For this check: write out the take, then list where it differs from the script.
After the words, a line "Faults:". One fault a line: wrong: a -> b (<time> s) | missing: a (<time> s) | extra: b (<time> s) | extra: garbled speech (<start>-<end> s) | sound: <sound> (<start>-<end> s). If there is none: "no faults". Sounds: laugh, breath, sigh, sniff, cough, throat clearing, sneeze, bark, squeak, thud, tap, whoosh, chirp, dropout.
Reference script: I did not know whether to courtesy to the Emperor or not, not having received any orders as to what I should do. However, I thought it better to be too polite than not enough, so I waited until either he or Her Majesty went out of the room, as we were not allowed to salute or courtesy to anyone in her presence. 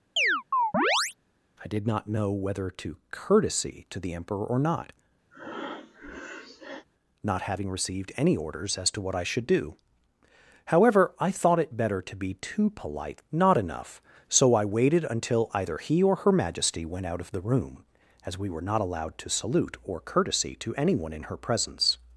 I did not know whether to courtesy to the Emperor or not, not having received any orders as to what I should do. However, I thought it better to be too polite not enough, so I waited until either he or Her Majesty went out of the room, as we were not allowed to salute or courtesy to anyone in her presence.
Faults:
sound: chirp (0.2-1.1 s)
sound: breath (5.3-6.9 s)
missing: than (13.2 s)